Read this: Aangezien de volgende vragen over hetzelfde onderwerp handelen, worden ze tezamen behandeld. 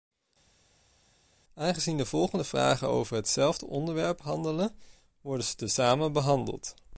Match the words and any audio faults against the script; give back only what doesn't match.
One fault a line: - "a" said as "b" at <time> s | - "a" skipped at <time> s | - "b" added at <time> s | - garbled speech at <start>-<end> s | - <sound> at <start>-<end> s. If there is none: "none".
none